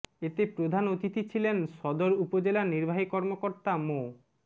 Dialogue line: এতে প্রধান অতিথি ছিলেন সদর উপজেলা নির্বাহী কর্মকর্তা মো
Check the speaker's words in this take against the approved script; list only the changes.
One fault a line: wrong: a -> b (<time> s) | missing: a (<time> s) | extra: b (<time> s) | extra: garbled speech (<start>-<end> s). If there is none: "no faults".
no faults